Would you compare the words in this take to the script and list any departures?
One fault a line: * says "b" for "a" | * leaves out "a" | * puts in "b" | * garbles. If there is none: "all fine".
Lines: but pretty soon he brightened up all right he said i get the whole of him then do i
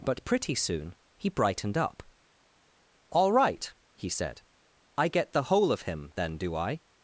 all fine